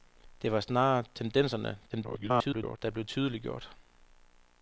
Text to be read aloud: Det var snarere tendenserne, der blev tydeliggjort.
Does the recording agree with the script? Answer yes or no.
no